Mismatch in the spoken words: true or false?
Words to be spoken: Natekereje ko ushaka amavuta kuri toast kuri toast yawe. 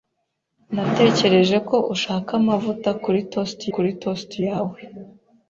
false